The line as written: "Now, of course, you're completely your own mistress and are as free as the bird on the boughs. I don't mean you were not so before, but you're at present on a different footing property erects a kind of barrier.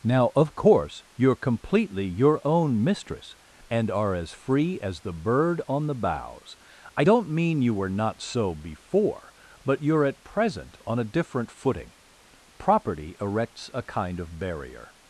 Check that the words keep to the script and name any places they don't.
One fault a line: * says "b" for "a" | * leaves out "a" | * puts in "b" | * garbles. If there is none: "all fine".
all fine